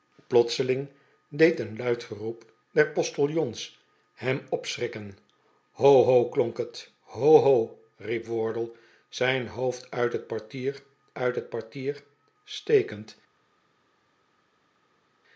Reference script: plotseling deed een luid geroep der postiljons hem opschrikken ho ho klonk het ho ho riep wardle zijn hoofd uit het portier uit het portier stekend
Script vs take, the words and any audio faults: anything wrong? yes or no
no